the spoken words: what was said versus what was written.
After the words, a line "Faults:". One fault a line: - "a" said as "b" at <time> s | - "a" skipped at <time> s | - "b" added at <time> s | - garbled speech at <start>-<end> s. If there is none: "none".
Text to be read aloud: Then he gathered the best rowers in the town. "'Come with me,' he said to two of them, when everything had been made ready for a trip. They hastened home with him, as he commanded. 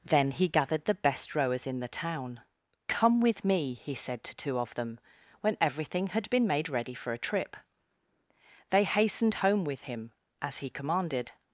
Then he gathered the best rowers in the town. "'Come with me,' he said to two of them, when everything had been made ready for a trip. They hastened home with him, as he commanded.
Faults:
none